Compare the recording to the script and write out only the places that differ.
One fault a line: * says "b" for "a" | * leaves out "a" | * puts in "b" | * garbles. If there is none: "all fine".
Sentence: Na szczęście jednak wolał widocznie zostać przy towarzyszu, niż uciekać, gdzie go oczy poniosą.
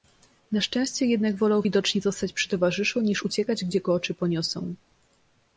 all fine